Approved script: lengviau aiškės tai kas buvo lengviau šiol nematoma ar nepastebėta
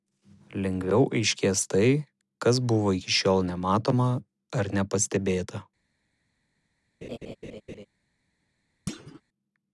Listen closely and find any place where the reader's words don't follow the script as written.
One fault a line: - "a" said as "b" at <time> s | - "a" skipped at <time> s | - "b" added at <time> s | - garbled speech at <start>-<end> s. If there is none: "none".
- "lengviau" said as "iki" at 3.0 s